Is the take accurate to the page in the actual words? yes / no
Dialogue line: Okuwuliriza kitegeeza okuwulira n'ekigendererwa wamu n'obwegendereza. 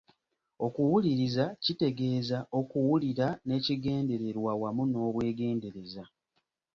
yes